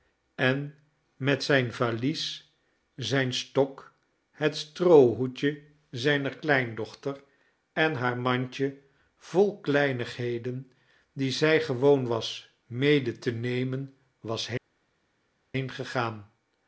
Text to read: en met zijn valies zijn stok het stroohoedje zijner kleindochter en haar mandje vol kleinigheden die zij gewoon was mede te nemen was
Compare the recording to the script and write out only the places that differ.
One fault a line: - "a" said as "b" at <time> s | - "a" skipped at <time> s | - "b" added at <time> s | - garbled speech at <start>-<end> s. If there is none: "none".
none